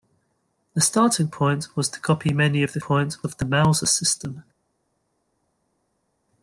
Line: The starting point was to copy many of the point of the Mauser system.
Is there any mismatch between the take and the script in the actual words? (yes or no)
no